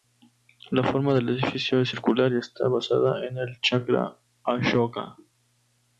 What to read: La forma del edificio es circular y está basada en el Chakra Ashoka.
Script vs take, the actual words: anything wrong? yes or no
no